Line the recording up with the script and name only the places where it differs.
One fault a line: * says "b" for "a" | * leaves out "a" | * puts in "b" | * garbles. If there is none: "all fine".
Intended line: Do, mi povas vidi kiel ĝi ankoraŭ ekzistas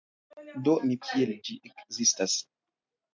* leaves out "povas vidi"
* leaves out "ankoraŭ"